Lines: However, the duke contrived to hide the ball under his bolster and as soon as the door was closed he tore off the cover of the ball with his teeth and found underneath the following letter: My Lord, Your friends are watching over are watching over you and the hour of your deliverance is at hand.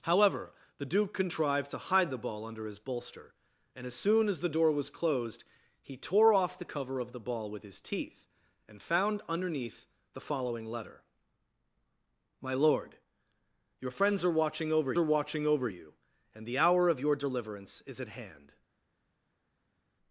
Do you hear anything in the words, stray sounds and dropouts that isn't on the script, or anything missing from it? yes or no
no